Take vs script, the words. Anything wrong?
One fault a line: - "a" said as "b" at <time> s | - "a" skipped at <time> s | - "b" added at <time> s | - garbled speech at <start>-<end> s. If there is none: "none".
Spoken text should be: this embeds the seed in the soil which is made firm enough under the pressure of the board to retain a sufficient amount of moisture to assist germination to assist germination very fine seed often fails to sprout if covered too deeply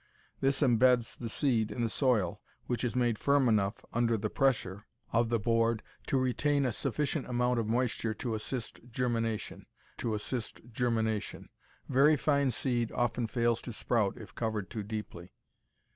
none